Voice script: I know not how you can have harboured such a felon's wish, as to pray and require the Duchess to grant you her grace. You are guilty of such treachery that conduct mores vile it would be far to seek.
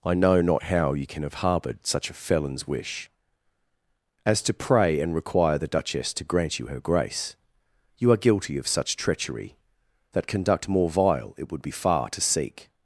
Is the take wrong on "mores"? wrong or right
wrong